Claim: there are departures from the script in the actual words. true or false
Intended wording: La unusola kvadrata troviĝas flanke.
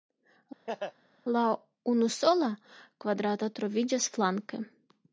false